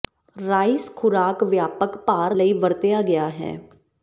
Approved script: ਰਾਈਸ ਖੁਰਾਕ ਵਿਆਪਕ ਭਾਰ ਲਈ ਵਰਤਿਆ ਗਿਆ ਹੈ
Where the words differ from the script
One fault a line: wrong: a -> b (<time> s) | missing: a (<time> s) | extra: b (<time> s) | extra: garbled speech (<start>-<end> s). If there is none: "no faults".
no faults